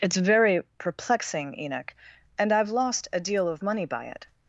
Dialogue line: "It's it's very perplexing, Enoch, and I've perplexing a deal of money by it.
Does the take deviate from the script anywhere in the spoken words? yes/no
yes